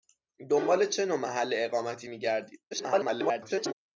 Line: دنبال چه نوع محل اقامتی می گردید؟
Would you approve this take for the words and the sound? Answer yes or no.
no